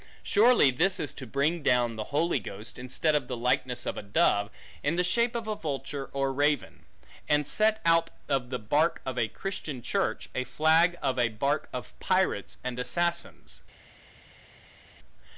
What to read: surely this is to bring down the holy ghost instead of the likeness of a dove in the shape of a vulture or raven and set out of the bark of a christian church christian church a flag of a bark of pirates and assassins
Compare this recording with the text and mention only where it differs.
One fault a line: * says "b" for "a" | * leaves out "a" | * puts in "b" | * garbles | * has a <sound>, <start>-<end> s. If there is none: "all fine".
* leaves out "christian church"